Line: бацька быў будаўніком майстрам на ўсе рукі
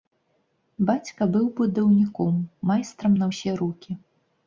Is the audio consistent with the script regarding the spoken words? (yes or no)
yes